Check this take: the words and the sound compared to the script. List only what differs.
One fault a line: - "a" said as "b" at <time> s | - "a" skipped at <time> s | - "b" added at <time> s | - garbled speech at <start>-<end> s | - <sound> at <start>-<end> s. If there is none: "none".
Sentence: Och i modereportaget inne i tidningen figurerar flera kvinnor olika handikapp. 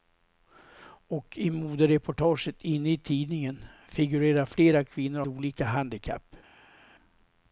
none